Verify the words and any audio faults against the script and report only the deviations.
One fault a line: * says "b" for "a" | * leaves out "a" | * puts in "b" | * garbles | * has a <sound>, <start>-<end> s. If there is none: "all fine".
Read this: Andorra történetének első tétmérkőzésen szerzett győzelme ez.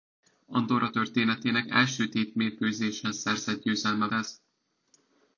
all fine